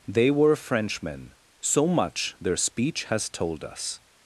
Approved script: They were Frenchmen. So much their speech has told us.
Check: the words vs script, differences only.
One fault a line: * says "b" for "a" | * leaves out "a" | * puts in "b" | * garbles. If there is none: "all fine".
all fine